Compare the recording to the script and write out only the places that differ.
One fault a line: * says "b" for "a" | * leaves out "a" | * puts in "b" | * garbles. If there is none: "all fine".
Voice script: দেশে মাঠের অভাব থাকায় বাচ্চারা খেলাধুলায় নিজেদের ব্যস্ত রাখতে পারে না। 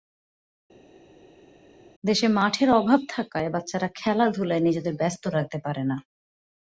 all fine